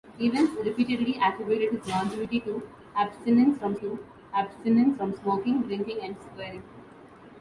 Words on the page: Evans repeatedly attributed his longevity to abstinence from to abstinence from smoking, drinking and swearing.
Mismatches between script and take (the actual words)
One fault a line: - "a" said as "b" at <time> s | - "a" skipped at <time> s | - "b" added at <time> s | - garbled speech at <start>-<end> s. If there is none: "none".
none